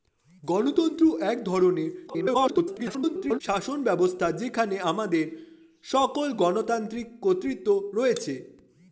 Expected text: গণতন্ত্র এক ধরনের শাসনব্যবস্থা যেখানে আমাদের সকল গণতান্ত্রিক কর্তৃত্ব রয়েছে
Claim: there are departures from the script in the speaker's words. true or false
true